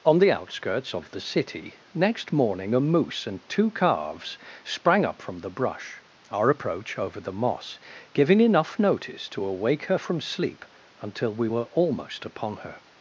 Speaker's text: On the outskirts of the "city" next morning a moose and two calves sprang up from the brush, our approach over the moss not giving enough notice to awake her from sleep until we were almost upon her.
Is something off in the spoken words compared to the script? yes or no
yes